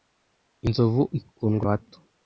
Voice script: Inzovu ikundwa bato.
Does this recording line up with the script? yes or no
yes